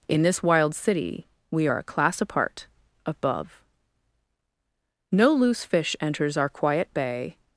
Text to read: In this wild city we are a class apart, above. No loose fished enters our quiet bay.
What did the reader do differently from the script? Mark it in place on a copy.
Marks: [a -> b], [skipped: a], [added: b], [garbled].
In this wild city we are a class apart, above. No loose [fished -> fish] enters our quiet bay.